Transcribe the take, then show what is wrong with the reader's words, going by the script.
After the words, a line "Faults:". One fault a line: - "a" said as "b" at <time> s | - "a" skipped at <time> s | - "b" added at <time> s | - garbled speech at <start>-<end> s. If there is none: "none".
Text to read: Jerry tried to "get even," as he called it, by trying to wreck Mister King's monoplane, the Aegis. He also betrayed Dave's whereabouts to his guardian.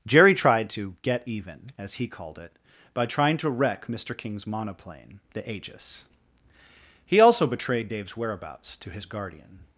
Jerry tried to "get even," as he called it, by trying to wreck Mister King's monoplane, the Aegis. He also betrayed Dave's whereabouts to his guardian.
Faults:
none